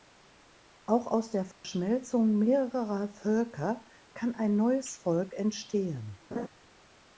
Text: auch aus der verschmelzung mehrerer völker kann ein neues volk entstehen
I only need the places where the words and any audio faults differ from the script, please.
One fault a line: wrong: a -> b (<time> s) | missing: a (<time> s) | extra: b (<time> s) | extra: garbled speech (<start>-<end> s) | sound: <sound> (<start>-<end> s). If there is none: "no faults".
sound: dropout (1.5-1.6 s)
sound: laugh (6.3-6.5 s)